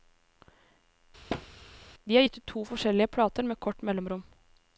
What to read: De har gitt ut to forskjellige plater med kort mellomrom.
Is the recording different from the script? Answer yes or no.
no